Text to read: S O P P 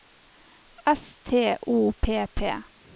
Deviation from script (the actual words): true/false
true